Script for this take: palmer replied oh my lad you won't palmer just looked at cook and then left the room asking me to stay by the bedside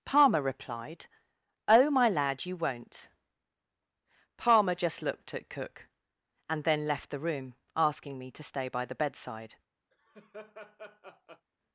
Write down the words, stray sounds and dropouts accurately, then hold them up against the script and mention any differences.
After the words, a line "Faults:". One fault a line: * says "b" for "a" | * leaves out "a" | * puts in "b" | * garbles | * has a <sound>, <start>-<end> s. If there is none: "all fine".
palmer replied oh my lad you won't palmer just looked at cook and then left the room asking me to stay by the bedside
Faults:
* has a laugh, 9.9-11.5 s